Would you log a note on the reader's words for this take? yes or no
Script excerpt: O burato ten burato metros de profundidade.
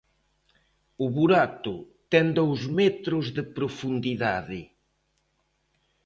yes